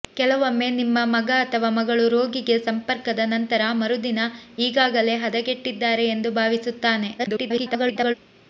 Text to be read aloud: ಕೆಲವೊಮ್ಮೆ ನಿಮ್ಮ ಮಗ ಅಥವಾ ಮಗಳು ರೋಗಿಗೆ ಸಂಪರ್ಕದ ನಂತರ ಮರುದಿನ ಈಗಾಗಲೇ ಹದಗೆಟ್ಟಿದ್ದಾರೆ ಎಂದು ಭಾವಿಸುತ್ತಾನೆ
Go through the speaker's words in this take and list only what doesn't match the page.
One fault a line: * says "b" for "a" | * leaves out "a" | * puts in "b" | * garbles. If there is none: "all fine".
* garbles